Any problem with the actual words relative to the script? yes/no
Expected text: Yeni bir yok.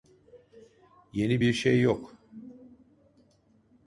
yes